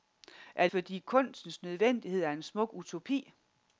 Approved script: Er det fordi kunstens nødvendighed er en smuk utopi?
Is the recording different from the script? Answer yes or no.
yes